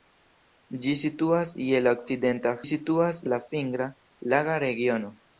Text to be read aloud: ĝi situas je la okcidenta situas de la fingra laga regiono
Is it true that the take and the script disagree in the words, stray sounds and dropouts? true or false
false